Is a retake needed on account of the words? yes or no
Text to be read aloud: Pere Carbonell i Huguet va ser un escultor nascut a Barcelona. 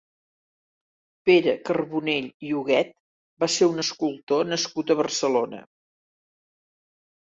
no